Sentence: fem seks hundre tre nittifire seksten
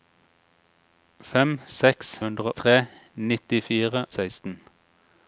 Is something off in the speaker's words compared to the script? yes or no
no